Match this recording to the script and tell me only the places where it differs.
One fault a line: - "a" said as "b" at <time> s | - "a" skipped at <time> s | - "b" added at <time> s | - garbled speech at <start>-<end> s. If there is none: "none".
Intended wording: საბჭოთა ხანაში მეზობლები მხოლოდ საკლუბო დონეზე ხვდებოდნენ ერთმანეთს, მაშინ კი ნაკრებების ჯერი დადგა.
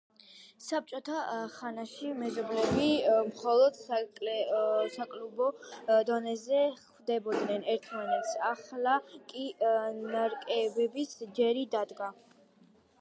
- "მაშინ" said as "ახლა" at 8.5 s